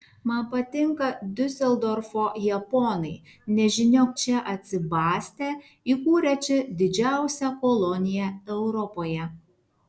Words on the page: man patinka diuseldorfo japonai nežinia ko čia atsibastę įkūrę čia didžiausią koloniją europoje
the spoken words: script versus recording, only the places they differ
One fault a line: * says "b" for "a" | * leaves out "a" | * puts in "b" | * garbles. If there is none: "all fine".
* leaves out "ko"